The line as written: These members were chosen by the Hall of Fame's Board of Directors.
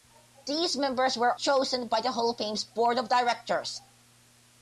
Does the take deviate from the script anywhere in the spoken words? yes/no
no